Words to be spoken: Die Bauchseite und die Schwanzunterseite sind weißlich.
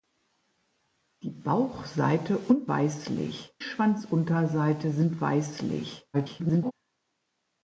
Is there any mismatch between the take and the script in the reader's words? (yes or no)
yes